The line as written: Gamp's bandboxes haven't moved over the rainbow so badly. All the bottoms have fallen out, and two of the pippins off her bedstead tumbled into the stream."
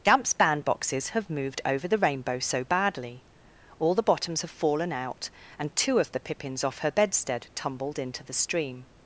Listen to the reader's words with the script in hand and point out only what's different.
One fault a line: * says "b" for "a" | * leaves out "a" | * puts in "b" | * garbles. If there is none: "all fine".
* says "have" for "haven't"